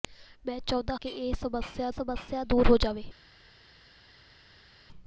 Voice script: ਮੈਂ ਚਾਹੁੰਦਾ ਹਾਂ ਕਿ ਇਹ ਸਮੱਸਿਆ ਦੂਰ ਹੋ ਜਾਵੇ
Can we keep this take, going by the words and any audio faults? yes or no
no